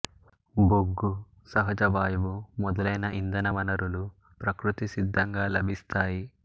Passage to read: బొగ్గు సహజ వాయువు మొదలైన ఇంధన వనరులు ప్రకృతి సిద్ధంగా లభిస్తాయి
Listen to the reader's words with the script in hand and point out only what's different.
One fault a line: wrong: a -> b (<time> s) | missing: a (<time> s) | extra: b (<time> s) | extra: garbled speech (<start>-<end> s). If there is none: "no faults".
no faults